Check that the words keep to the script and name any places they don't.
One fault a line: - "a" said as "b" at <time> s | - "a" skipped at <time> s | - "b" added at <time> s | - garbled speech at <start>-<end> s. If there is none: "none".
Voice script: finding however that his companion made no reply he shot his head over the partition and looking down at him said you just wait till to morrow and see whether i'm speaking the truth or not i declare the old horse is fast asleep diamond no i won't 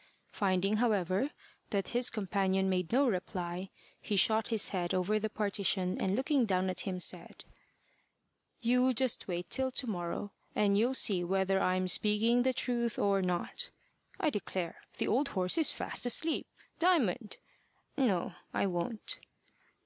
- "you'll" added at 10.8 s